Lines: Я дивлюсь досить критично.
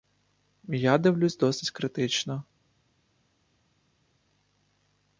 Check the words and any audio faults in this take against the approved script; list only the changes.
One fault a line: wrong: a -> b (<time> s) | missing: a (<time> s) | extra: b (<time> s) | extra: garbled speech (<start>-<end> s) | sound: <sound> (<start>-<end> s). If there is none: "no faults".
no faults